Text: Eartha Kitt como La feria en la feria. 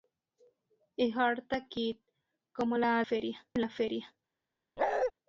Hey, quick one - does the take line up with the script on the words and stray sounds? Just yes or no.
no